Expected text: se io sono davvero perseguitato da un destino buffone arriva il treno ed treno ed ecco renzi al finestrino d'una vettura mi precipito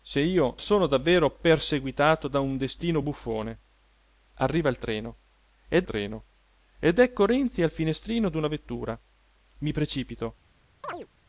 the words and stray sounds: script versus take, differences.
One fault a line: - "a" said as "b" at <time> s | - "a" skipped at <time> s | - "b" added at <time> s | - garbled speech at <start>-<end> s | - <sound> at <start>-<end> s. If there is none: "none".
- chirp at 10.8-11.1 s